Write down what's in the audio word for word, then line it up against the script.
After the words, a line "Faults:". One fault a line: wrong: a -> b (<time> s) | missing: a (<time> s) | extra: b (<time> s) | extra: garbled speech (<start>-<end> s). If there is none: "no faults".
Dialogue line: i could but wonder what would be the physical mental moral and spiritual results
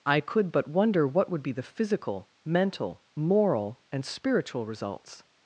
i could but wonder what would be the physical mental moral and spiritual results
Faults:
no faults